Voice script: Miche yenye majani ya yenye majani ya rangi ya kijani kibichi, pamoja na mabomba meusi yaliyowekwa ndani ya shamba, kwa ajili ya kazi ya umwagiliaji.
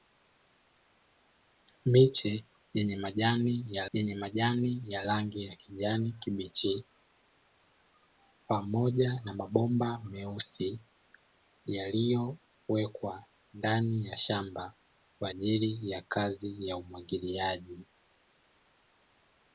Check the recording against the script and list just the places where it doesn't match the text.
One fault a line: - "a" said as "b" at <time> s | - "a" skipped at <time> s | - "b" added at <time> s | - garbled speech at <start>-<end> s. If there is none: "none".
none